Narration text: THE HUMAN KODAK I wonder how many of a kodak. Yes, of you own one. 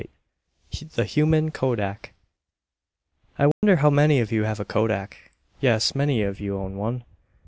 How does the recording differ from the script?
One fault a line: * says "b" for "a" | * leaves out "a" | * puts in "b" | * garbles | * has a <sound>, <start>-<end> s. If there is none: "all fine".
* has a dropout, 3.5-3.6 s
* puts in "you have"
* puts in "many"